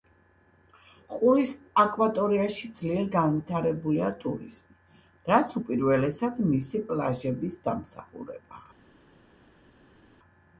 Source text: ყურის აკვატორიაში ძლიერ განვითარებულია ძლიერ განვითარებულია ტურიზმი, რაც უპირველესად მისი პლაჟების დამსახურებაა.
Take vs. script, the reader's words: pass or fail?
fail